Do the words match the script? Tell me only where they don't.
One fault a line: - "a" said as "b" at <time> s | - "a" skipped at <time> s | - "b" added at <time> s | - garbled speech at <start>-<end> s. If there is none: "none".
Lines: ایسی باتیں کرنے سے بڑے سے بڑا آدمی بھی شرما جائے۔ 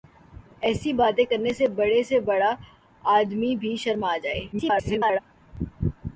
- garbled speech at 4.5-5.2 s